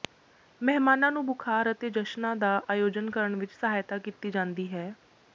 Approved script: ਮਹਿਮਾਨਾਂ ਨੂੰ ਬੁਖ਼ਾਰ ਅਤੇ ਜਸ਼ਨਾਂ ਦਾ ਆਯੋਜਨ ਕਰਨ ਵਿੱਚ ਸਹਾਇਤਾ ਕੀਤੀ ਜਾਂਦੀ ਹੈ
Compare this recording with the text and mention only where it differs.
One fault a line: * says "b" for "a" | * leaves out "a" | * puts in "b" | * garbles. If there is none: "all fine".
all fine